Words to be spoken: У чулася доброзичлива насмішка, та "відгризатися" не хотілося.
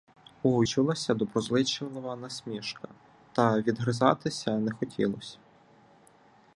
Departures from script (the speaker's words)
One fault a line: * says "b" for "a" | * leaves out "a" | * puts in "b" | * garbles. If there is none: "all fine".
all fine